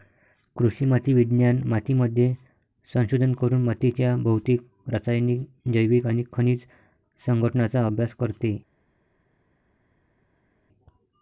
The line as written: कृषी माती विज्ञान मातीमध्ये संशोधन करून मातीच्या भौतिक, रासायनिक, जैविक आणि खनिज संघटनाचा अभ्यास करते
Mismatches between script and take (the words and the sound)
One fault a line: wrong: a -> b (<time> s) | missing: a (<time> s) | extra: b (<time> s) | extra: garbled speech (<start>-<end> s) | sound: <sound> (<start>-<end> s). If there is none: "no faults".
no faults